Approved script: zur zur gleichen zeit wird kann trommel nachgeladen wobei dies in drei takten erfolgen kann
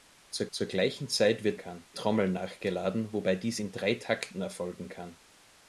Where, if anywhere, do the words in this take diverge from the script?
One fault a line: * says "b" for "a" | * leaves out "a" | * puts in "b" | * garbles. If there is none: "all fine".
all fine